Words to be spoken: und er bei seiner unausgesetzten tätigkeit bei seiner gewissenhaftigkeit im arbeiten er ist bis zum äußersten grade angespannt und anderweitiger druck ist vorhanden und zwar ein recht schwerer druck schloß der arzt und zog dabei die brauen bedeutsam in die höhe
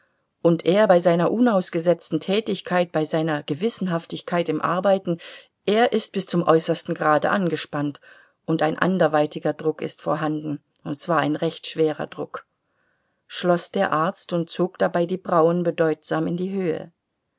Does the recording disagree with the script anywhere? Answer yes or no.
yes